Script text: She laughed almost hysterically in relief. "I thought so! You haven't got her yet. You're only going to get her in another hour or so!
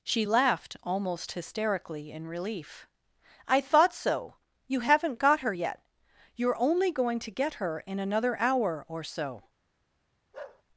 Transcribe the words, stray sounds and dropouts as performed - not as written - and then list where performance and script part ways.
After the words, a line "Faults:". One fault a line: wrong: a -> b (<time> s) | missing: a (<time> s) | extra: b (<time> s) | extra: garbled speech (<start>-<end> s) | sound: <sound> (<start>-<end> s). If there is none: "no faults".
She laughed almost hysterically in relief. "I thought so! You haven't got her yet. You're only going to get her in another hour or so!
Faults:
sound: bark (10.3-10.6 s)